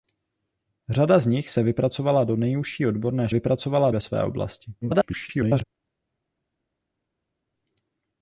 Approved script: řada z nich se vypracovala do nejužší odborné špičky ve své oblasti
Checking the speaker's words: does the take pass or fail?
fail